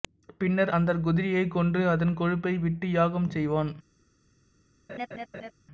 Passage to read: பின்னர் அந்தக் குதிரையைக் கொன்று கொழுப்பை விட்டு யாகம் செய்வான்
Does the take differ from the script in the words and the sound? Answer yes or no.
yes